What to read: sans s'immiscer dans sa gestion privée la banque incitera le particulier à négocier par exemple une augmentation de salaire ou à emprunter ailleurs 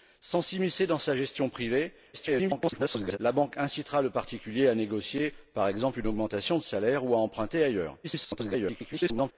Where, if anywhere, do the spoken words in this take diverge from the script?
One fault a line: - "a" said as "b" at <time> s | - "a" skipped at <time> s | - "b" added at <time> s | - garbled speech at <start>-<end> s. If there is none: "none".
- garbled speech at 2.1-3.2 s
- garbled speech at 8.0-9.3 s